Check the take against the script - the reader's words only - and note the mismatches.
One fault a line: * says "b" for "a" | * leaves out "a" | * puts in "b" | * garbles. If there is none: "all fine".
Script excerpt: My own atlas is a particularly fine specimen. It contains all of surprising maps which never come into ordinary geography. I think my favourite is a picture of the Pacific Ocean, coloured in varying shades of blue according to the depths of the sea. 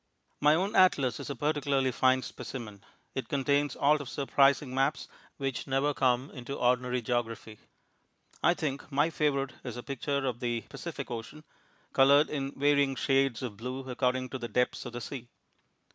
all fine